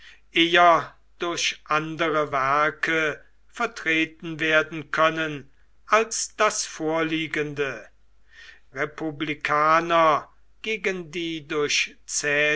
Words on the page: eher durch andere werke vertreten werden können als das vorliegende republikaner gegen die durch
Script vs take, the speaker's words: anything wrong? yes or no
no